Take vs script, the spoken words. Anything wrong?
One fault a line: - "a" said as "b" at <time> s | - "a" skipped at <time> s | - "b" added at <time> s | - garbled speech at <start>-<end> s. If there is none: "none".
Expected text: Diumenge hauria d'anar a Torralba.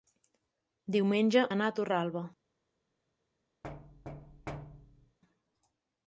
- "hauria" skipped at 1.4 s